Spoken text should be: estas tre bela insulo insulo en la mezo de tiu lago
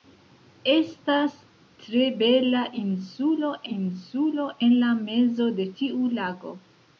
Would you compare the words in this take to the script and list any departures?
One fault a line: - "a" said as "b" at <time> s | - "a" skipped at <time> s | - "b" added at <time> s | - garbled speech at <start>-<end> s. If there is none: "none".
none